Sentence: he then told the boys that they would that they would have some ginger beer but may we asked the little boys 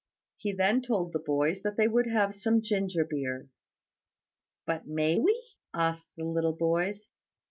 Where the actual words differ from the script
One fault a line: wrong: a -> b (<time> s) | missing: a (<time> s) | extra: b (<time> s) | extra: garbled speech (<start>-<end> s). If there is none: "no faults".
missing: that they would (2.1 s)